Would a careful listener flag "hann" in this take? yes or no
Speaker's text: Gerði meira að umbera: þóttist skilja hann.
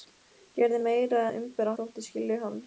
no